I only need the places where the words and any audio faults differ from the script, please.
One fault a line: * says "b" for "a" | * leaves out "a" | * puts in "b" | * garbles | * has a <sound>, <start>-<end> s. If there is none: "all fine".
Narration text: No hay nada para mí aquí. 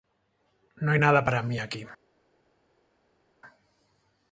all fine